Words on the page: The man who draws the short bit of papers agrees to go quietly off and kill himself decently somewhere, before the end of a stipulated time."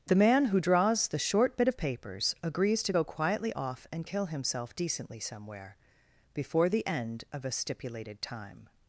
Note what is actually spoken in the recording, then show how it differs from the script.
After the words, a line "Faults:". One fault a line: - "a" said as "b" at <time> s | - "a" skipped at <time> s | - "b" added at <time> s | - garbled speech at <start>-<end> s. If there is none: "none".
The man who draws the short bit of papers agrees to go quietly off and kill himself decently somewhere, before the end of a stipulated time."
Faults:
none